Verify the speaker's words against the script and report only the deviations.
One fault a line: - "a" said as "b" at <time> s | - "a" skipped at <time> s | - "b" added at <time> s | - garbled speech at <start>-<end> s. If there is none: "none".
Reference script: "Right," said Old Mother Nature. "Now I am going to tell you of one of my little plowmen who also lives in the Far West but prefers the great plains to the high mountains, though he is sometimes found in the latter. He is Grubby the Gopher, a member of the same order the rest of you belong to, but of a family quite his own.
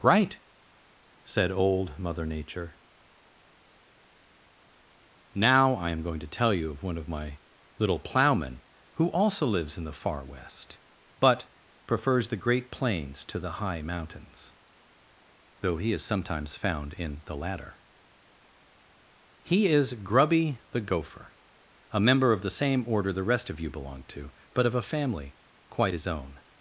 none